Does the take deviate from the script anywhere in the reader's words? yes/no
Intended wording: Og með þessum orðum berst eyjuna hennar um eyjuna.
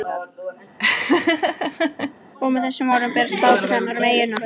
yes